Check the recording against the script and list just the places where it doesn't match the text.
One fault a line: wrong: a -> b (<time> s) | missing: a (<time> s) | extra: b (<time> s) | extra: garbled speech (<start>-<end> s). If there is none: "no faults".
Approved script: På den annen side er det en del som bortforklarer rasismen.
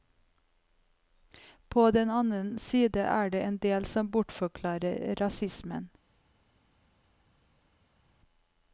no faults